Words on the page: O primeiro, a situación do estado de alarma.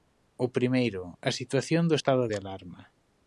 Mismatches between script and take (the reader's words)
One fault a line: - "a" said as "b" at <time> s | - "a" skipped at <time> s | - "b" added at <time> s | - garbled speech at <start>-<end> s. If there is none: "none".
none